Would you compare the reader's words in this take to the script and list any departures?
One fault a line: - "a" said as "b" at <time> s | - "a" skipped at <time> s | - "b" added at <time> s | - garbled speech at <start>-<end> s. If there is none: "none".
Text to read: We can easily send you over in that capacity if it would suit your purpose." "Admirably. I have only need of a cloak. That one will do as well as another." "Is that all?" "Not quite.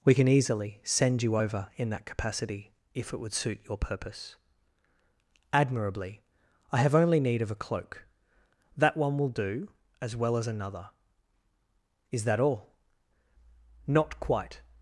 none